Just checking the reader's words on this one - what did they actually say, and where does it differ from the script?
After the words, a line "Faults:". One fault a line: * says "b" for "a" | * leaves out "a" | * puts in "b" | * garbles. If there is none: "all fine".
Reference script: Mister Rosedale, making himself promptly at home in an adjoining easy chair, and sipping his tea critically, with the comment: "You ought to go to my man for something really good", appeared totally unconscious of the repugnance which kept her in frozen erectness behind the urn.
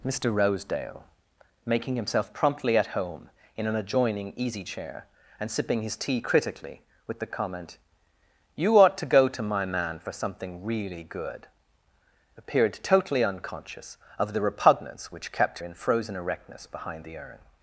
Mister Rosedale, making himself promptly at home in an adjoining easy chair, and sipping his tea critically, with the comment: "You ought to go to my man for something really good", appeared totally unconscious of the repugnance which kept in frozen erectness behind the urn.
Faults:
* leaves out "her"